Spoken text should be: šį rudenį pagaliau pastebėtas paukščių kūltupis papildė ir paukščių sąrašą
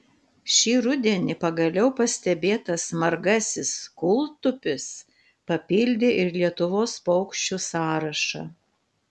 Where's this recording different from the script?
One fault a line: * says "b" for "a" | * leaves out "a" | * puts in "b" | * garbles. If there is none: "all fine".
* says "margasis" for "paukščių"
* puts in "lietuvos"